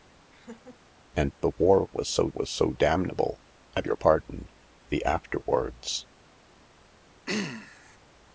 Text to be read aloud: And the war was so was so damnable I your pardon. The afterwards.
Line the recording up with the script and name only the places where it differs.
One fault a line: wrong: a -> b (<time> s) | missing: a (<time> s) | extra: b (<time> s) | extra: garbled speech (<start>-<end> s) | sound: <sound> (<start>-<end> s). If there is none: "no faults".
sound: laugh (0.3-0.8 s)
sound: throat clearing (7.3-8.0 s)